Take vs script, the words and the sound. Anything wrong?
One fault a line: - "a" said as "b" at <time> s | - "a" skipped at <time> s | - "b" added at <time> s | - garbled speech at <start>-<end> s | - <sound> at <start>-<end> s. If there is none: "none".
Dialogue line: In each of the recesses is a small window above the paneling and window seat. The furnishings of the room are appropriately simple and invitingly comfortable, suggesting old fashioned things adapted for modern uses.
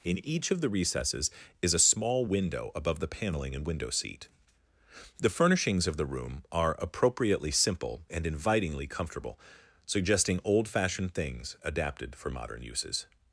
none